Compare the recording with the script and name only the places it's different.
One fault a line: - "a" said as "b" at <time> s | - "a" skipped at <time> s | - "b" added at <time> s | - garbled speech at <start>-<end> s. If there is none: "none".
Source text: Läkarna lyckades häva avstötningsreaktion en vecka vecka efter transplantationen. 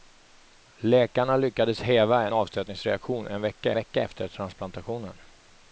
none